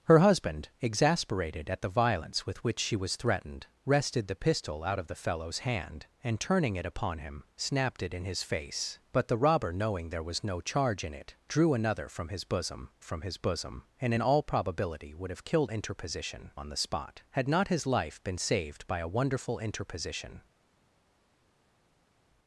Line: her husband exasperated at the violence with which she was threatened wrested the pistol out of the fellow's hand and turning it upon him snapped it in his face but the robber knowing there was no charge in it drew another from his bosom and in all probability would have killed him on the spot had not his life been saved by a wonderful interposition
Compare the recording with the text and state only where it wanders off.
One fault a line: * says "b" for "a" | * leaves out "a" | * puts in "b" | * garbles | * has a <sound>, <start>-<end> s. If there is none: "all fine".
* puts in "from his bosom"
* says "interposition" for "him"